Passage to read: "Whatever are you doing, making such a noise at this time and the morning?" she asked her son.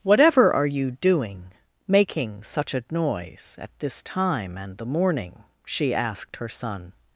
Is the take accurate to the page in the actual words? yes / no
yes